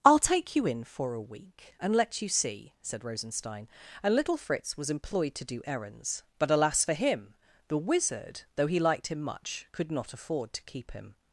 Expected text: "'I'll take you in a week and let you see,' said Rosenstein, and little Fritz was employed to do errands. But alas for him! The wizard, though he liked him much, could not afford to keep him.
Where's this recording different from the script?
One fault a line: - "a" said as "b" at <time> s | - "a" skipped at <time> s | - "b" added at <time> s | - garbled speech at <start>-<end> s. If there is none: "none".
- "for" added at 0.8 s